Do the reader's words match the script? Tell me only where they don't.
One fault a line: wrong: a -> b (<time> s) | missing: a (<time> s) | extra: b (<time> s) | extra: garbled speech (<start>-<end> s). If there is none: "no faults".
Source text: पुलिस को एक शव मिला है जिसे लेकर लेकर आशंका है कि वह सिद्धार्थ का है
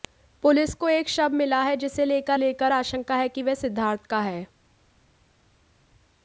no faults